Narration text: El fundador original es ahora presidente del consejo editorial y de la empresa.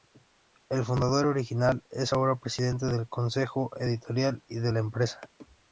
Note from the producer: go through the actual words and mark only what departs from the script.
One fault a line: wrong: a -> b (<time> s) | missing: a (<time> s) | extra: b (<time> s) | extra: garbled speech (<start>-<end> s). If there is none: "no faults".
no faults